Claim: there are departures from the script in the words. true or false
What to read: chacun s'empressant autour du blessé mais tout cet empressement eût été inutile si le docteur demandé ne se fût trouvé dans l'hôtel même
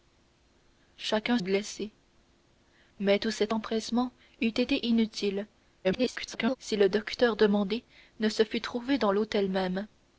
true